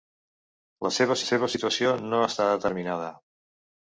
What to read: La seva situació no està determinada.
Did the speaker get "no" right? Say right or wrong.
right